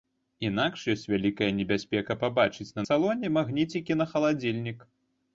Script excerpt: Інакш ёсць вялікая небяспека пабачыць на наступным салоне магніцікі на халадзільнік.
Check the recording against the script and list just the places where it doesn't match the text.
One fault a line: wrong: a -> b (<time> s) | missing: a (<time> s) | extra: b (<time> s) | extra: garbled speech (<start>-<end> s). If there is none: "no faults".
missing: наступным (2.9 s)